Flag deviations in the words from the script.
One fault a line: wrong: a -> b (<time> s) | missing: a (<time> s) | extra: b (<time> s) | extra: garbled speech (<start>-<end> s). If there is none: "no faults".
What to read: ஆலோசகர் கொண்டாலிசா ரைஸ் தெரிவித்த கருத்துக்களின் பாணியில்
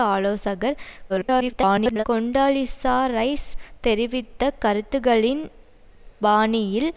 extra: garbled speech (1.1-2.0 s)